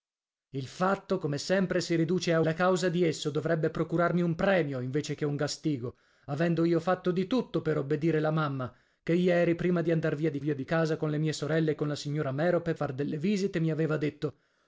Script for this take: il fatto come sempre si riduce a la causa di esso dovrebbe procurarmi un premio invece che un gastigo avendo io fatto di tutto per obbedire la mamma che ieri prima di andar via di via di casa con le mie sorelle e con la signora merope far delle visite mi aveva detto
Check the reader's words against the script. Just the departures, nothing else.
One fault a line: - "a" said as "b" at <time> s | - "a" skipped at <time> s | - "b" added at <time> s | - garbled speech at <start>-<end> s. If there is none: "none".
none